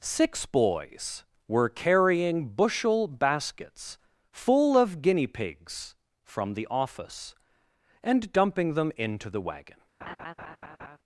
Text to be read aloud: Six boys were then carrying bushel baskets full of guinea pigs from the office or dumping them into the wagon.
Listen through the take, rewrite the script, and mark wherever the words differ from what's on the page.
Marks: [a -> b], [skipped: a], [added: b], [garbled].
Six boys were [skipped: then] carrying bushel baskets full of guinea pigs from the office [or -> and] dumping them into the wagon.